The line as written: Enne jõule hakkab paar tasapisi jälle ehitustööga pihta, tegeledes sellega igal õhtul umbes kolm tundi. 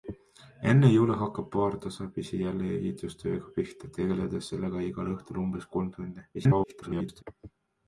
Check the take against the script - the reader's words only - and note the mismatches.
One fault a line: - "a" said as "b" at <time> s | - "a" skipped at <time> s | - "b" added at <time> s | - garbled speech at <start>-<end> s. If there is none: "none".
- garbled speech at 6.3-7.2 s